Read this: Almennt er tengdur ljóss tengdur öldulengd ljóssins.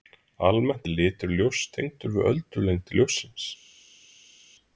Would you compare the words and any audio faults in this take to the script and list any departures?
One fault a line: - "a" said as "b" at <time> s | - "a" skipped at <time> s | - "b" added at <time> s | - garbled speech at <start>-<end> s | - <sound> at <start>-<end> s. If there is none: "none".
- "tengdur" said as "litur" at 1.0 s
- "við" added at 2.2 s